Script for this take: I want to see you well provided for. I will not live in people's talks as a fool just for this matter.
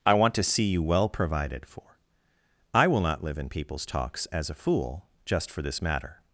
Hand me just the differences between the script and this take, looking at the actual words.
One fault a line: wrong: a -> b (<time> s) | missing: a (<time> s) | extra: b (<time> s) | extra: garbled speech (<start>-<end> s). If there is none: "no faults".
no faults